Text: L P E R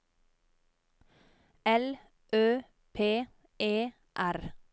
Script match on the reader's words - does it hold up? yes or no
no